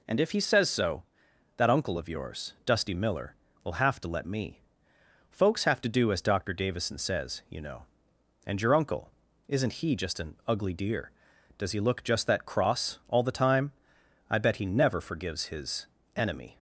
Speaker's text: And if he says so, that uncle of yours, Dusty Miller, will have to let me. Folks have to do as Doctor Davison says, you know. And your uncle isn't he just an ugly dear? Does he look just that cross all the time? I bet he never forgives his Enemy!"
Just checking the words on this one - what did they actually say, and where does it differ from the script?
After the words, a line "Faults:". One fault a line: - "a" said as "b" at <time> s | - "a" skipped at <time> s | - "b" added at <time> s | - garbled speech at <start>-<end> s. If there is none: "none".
And if he says so, that uncle of yours, Dusty Miller, will have to let me. Folks have to do as Doctor Davison says, you know. And your uncle isn't he just an ugly dear? Does he look just that cross all the time? I bet he never forgives his Enemy!"
Faults:
none